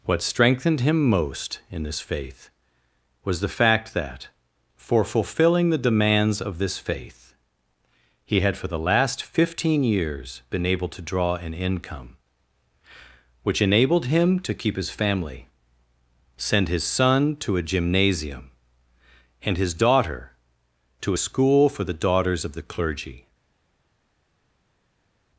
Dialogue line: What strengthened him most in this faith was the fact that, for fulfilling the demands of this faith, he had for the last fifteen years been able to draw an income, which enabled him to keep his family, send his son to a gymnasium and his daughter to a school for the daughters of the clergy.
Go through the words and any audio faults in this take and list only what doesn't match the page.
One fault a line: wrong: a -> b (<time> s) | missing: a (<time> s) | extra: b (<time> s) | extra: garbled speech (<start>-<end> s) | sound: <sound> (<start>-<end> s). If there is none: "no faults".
no faults